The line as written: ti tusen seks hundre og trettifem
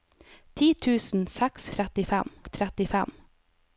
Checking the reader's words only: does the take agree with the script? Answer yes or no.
no